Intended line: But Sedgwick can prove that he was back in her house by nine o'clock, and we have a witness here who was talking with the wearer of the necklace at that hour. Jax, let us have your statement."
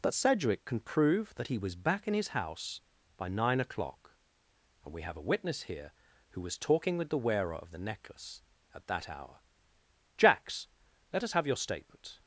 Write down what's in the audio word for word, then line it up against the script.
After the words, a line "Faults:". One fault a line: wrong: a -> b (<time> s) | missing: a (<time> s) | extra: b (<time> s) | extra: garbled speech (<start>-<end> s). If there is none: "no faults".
But Sedgwick can prove that he was back in his house by nine o'clock, and we have a witness here who was talking with the wearer of the necklace at that hour. Jax, let us have your statement."
Faults:
wrong: her -> his (2.1 s)